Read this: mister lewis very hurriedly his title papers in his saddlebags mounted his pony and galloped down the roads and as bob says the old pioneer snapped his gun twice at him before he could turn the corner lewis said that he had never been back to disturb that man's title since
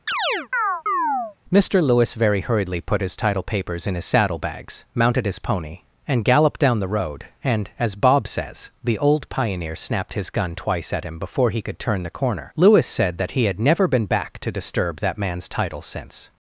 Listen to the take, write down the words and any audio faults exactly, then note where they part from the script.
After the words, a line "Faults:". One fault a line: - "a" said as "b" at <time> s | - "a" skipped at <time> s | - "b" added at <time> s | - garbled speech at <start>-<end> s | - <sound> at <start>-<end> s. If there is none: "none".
mister lewis very hurriedly put his title papers in his saddlebags mounted his pony and galloped down the road and as bob says the old pioneer snapped his gun twice at him before he could turn the corner lewis said that he had never been back to disturb that man's title since
Faults:
- chirp at 0.1-1.4 s
- "put" added at 2.8 s
- "roads" said as "road" at 6.9 s